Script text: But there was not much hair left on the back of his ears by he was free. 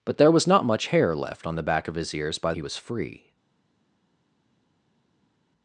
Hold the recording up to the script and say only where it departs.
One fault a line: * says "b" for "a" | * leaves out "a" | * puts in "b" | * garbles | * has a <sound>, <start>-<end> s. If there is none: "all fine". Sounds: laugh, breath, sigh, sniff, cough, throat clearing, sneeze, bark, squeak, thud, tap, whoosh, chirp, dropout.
all fine